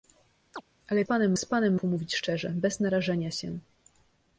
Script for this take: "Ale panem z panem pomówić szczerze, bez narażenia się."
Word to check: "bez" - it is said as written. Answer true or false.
true